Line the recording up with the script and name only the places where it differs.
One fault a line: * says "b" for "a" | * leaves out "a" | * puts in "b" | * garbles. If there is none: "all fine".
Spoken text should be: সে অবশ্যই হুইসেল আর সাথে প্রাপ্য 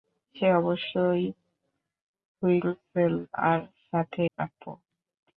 all fine